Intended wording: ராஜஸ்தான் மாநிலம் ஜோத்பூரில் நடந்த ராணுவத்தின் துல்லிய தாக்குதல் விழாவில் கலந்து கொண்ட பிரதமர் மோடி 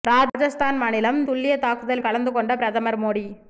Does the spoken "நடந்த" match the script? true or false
false